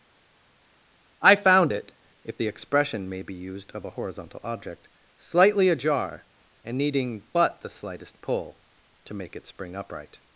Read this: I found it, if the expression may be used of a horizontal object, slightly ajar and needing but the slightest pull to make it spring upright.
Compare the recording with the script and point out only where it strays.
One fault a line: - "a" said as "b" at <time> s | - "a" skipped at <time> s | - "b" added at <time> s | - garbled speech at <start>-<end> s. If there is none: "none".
none